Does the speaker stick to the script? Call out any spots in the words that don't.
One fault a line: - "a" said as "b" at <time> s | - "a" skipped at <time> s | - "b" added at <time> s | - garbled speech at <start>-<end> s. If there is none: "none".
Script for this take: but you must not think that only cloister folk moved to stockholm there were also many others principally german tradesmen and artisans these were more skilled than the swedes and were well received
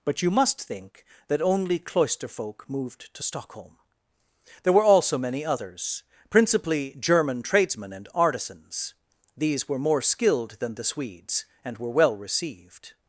- "not" skipped at 0.6 s